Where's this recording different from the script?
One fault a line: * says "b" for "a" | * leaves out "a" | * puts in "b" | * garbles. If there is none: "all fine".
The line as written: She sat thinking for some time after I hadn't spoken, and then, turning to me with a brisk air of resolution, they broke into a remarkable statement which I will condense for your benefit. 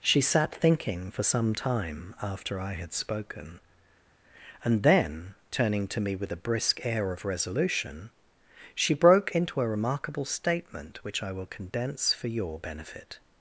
* says "had" for "hadn't"
* says "she" for "they"